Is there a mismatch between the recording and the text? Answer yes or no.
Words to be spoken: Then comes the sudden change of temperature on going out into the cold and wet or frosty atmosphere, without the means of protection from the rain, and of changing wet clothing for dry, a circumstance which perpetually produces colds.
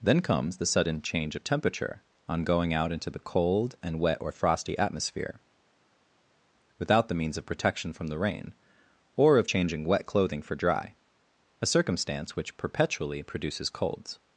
yes